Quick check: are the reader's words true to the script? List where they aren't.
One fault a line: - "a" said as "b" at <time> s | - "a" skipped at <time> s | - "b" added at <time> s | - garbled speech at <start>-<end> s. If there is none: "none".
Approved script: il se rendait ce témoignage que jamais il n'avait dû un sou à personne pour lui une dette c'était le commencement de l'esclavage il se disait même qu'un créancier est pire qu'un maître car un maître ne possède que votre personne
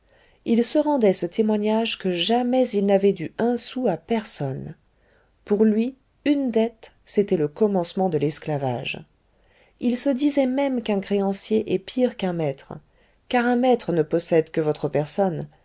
none